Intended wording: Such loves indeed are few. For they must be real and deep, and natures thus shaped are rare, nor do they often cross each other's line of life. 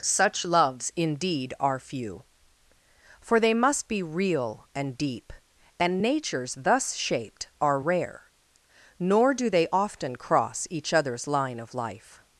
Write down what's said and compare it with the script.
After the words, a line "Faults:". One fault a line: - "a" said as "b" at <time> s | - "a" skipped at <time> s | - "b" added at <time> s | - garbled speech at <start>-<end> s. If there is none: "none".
Such loves indeed are few. For they must be real and deep, and natures thus shaped are rare, nor do they often cross each other's line of life.
Faults:
none